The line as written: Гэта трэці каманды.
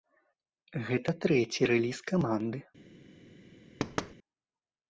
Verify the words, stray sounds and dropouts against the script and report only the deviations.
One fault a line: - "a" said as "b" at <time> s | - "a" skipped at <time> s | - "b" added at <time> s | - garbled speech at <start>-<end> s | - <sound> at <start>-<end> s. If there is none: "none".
- "рэліз" added at 1.8 s
- thud at 3.8-4.1 s